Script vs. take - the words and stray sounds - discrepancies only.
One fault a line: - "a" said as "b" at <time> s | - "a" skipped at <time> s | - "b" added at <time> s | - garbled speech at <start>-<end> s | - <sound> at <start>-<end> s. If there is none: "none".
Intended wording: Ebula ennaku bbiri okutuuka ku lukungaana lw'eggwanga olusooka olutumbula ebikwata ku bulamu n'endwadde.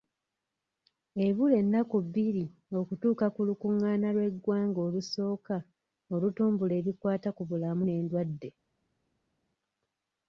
none